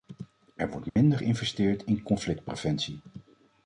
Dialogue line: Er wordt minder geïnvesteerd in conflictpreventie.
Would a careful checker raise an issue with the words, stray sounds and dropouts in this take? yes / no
yes